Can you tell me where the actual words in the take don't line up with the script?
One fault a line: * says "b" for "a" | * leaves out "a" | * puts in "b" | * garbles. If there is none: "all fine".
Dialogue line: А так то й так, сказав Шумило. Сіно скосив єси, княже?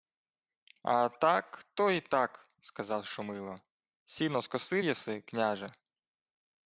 all fine